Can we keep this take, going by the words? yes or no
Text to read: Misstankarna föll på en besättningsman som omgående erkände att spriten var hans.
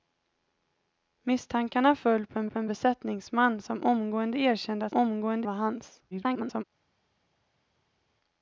no